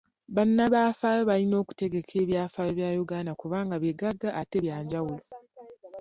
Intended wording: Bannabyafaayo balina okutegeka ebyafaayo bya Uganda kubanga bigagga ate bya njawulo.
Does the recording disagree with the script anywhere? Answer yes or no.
no